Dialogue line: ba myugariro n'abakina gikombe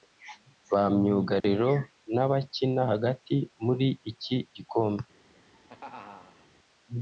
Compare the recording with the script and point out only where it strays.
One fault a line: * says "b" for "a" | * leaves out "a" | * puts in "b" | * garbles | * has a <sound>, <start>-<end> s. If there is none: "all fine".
* has a dropout, 1.4-1.4 s
* puts in "hagati muri iki"
* has a laugh, 5.3-6.5 s